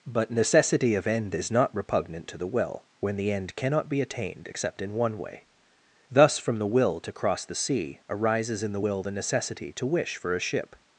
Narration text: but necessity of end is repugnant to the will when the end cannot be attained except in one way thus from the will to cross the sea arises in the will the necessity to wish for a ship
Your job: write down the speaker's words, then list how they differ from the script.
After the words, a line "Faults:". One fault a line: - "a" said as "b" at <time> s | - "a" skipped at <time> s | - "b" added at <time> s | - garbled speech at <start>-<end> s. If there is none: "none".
but necessity of end is not repugnant to the will when the end cannot be attained except in one way thus from the will to cross the sea arises in the will the necessity to wish for a ship
Faults:
- "not" added at 1.5 s